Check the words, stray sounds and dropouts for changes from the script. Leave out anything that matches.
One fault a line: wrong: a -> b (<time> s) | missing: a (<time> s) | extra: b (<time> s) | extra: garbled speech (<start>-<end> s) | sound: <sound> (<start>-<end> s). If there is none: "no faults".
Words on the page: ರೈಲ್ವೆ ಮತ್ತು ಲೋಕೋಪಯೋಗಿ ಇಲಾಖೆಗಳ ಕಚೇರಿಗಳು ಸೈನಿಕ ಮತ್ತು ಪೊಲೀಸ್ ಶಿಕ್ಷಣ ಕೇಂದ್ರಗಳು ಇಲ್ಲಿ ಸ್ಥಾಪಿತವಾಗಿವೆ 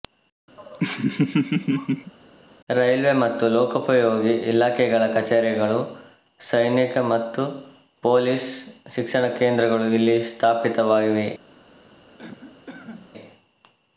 sound: laugh (0.6-2.1 s)
sound: cough (12.2-13.1 s)